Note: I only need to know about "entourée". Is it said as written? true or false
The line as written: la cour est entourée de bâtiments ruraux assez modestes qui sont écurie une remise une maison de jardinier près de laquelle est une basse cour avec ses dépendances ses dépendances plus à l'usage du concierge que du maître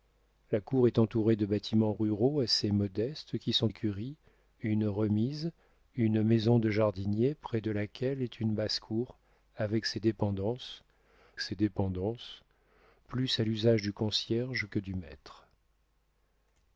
true